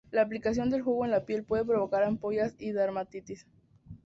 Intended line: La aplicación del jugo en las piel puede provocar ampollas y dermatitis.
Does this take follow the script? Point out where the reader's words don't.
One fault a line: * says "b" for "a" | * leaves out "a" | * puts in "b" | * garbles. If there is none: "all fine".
* says "la" for "las"